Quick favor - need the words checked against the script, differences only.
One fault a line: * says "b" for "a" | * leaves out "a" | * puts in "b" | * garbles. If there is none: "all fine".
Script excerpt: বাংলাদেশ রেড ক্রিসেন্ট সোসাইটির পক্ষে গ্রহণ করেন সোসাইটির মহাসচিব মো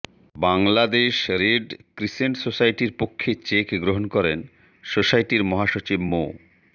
* puts in "চেক"